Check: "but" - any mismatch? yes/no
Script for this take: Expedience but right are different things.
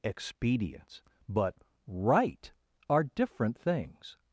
no